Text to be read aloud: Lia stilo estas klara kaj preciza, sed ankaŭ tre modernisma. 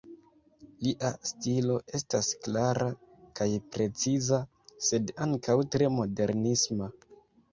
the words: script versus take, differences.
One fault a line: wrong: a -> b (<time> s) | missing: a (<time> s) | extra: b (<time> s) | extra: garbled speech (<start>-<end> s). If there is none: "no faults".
no faults